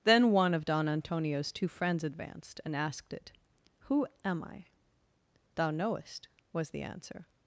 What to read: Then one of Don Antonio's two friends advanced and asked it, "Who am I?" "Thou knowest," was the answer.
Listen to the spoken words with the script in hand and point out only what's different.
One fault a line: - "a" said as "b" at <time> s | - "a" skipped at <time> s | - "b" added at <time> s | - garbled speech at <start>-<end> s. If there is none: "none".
none